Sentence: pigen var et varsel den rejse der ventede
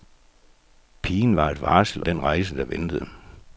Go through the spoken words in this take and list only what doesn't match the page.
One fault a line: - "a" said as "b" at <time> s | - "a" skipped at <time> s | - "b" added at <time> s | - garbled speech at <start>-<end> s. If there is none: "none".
none